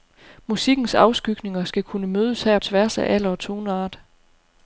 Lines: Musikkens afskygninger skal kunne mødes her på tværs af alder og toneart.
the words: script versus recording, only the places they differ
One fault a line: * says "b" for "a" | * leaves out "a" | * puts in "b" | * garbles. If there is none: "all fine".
* leaves out "på"